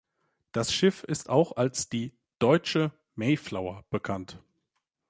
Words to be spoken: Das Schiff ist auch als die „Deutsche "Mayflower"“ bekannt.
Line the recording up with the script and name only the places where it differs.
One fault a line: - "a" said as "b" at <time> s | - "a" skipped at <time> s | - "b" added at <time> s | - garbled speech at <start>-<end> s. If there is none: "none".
none